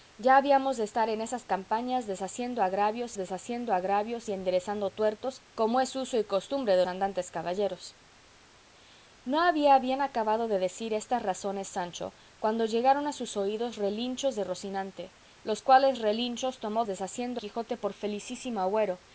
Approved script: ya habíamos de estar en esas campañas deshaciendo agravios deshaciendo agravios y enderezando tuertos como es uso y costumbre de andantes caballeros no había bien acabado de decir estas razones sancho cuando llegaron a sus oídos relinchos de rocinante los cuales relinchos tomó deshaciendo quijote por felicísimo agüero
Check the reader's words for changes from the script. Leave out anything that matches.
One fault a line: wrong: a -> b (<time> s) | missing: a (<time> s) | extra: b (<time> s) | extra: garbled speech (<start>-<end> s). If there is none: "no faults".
no faults